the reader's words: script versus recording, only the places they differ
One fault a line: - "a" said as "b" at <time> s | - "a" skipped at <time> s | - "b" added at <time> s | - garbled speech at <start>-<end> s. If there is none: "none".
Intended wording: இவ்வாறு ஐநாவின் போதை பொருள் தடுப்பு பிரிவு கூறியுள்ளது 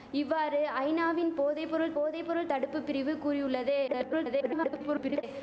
- "போதை பொருள்" added at 1.9 s
- garbled speech at 3.9-5.2 s